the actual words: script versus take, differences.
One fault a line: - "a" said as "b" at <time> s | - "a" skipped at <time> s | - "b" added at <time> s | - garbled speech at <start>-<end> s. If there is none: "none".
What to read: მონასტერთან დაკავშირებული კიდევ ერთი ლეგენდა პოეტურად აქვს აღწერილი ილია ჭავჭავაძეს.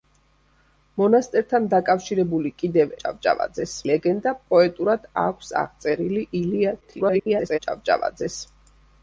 - "ერთი" said as "ჭავჭავაძეს" at 3.0 s
- garbled speech at 6.8-7.6 s